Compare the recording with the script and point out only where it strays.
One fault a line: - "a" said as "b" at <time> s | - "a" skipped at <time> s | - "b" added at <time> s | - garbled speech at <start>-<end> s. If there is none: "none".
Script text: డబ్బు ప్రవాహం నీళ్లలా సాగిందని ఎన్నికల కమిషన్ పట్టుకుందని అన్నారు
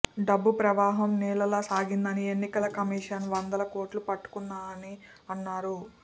- "వందల కోట్లు" added at 3.3 s